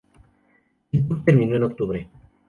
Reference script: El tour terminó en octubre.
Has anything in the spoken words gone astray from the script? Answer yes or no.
no